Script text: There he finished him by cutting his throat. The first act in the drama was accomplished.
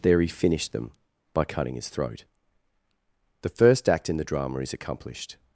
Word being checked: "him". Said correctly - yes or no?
no